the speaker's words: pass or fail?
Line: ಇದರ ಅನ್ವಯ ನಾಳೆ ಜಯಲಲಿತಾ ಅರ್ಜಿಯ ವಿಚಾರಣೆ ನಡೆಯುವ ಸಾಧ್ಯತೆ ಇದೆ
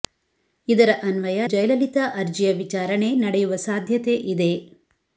fail